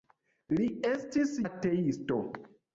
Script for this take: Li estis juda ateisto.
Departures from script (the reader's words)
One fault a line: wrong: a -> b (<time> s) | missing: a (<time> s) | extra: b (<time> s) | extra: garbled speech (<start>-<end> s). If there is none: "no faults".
missing: juda (1.4 s)